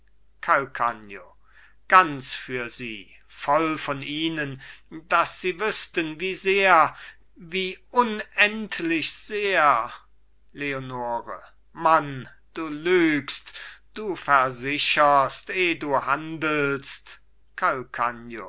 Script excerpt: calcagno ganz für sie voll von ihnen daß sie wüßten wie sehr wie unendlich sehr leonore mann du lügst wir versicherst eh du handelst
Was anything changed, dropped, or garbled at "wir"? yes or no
yes